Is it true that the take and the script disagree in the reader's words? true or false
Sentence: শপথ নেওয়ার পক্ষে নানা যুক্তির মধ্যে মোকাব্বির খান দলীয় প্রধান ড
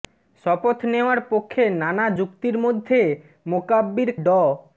true